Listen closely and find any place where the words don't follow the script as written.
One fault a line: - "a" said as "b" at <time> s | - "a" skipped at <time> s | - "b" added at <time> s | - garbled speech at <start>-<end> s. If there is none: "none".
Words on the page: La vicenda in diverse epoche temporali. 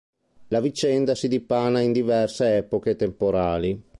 - "si dipana" added at 1.1 s